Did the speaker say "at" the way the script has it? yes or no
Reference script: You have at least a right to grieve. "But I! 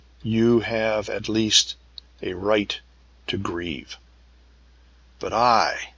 yes